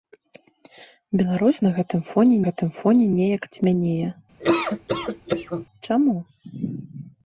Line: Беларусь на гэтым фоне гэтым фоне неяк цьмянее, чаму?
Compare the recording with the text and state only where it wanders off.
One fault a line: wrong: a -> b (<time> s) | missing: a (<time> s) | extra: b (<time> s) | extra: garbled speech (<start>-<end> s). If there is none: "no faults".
no faults